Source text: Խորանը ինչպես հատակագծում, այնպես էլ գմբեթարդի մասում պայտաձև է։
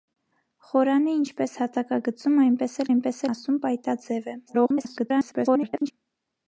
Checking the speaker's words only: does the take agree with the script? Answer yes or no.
no